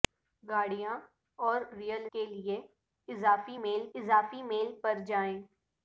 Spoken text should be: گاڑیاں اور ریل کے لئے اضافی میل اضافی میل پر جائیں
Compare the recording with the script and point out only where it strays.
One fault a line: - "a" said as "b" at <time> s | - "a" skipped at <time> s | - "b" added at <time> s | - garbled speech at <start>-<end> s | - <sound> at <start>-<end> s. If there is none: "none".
none